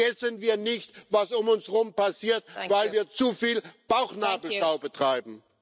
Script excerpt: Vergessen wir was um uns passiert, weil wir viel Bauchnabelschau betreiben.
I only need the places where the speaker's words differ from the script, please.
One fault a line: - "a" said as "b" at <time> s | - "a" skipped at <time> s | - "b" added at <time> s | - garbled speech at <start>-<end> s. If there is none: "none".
- "nicht" added at 0.6 s
- "herum" added at 1.7 s
- "zu" added at 3.1 s